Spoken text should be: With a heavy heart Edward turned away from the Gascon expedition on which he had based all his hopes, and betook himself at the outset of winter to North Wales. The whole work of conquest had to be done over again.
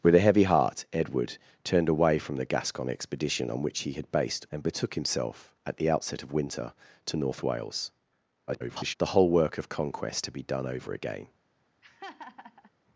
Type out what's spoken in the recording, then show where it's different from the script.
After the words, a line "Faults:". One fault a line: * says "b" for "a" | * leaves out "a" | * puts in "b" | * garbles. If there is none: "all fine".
With a heavy heart Edward turned away from the Gascon expedition on which he had based and betook himself at the outset of winter to North Wales. [garbled] The whole work of conquest to be done over again.
Faults:
* leaves out "all his hopes"
* garbles
* leaves out "had"